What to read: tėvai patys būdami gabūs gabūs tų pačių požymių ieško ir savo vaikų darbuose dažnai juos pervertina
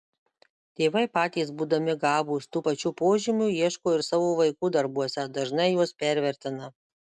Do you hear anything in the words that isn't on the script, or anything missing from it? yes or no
yes